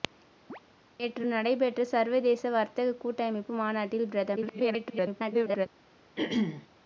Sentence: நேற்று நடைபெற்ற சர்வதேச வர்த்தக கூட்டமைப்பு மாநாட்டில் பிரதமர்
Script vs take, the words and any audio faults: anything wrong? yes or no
yes